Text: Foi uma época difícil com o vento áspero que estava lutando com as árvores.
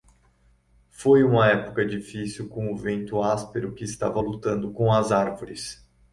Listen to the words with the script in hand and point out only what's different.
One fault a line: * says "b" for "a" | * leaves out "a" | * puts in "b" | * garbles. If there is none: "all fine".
all fine